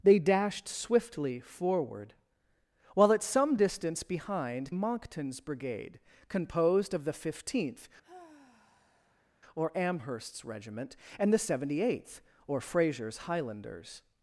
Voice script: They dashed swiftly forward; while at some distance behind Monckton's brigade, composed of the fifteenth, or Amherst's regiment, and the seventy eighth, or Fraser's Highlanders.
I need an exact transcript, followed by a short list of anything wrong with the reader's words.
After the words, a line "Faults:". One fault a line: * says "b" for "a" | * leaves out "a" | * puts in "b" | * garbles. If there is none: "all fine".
They dashed swiftly forward; while at some distance behind Monckton's brigade, composed of the fifteenth, or Amherst's regiment, and the seventy eighth, or Fraser's Highlanders.
Faults:
all fine